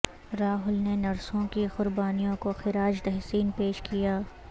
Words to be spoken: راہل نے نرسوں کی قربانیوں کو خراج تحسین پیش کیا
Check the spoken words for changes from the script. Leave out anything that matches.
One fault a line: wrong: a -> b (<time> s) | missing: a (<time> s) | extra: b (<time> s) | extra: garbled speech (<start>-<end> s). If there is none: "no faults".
no faults